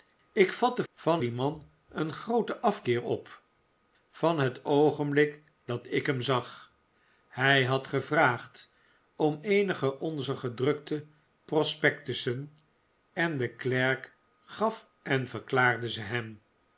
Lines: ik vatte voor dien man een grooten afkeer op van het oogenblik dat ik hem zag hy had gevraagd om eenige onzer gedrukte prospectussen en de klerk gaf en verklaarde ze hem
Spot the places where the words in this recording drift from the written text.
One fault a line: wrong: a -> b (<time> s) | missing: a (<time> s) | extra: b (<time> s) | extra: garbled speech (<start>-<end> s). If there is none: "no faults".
wrong: voor -> van (0.9 s)